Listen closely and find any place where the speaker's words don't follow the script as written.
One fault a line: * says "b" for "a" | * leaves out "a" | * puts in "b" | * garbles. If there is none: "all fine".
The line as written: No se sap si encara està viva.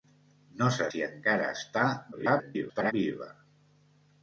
* leaves out "sap"
* garbles